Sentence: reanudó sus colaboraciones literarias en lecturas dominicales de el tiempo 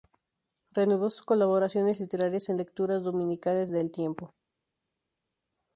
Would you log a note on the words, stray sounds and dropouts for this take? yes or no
no